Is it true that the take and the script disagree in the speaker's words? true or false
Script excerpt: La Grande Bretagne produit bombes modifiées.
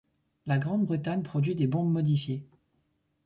true